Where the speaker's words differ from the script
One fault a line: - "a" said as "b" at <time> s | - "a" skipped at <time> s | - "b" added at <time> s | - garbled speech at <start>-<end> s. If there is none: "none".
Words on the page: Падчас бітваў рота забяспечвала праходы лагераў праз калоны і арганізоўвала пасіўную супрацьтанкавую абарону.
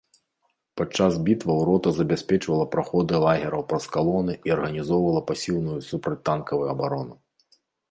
none